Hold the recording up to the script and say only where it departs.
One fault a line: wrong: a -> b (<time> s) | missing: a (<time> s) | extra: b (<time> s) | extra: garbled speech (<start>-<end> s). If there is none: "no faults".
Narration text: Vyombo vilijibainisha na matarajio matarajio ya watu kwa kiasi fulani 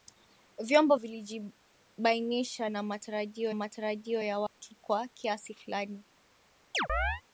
no faults